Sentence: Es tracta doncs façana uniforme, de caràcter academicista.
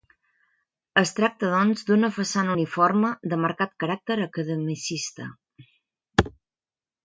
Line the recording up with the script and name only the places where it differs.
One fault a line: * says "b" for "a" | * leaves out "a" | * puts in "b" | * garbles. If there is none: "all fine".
* puts in "d'una"
* puts in "marcat"